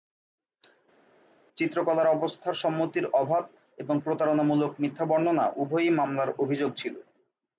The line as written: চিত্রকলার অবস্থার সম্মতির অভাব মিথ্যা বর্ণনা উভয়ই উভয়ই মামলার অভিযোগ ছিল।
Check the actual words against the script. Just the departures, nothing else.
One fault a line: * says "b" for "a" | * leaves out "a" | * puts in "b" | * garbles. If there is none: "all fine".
* puts in "এবং প্রতারণামূলক"
* leaves out "উভয়ই"